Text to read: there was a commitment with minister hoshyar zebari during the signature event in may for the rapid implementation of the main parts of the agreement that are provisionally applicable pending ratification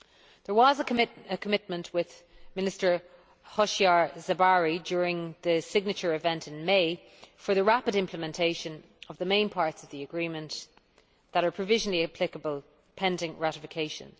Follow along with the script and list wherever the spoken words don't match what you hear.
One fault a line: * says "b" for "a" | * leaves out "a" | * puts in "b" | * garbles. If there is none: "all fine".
all fine